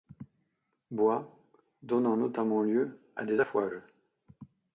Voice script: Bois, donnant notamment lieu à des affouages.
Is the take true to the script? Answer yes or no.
yes